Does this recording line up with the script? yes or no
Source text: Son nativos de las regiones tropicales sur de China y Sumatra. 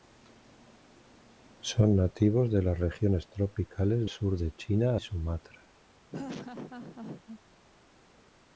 yes